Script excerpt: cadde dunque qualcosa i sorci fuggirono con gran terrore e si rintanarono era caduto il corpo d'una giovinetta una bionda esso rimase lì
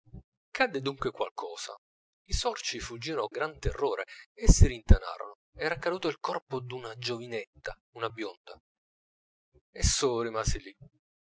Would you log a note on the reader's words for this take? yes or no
yes